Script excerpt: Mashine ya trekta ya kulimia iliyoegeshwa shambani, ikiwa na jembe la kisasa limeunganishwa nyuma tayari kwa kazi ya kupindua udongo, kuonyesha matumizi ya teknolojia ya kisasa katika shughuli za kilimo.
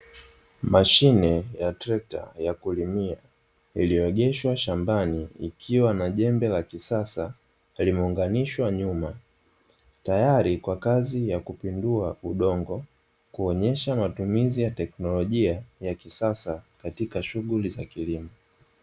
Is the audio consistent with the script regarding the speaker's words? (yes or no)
yes